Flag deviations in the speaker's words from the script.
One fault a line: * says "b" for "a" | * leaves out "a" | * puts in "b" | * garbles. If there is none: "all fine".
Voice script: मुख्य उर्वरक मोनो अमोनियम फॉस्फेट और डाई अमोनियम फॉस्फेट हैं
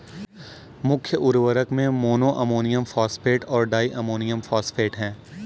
* puts in "में"